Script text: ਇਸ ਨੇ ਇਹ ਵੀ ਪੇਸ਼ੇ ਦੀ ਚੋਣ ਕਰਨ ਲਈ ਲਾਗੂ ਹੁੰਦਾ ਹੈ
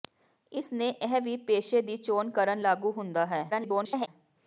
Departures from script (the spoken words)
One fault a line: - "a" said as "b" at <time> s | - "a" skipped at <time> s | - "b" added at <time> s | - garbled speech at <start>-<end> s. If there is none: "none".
- "ਲਈ" skipped at 2.6 s
- garbled speech at 3.5-4.1 s